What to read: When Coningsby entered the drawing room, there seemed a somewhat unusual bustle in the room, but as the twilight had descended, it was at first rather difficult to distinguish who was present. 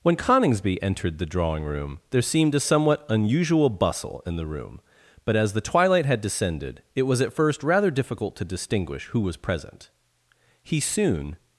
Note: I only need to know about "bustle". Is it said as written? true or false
true